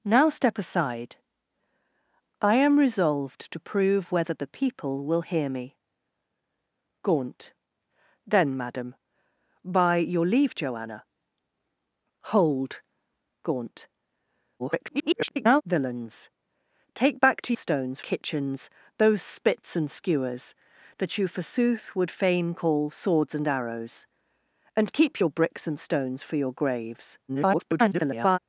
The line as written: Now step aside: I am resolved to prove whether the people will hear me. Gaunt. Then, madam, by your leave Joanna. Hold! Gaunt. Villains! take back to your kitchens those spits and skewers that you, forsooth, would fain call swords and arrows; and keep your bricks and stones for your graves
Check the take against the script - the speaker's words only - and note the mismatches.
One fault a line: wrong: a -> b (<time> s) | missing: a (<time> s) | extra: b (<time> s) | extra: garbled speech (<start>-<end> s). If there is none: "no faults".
extra: garbled speech (14.6-15.6 s)
wrong: your -> stones (17.6 s)
extra: garbled speech (27.3-28.4 s)